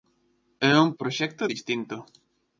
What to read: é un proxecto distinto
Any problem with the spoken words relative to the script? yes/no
no